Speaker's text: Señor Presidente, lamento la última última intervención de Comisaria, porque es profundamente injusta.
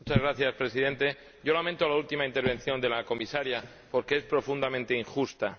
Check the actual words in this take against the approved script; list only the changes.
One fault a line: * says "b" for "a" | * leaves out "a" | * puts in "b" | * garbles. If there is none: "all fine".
* leaves out "última"
* puts in "la"